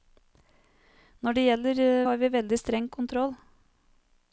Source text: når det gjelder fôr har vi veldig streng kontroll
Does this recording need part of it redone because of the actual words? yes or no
yes